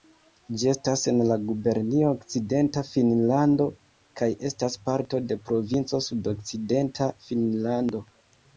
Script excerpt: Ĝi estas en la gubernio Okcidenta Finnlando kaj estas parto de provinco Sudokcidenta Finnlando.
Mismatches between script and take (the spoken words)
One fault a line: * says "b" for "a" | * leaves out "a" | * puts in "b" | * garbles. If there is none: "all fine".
all fine